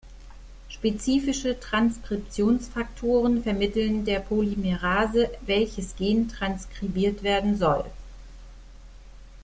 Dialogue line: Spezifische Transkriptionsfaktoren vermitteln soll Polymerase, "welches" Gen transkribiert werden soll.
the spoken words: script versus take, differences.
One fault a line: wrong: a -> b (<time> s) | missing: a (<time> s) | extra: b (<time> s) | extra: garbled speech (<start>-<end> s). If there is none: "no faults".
wrong: soll -> der (4.0 s)